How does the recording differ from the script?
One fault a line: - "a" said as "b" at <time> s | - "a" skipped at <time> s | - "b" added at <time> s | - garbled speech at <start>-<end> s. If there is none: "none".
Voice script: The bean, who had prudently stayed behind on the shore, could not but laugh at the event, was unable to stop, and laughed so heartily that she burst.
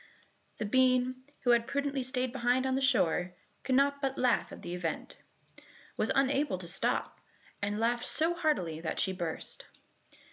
none